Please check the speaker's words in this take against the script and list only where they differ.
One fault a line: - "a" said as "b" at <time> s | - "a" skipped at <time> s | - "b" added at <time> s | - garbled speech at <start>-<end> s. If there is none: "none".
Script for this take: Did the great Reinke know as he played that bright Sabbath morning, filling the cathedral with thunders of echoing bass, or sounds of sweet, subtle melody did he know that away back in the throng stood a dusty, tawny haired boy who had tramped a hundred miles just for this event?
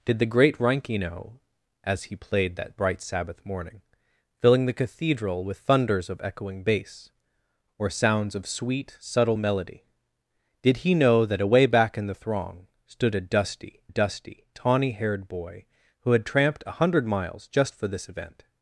- "dusty" added at 13.9 s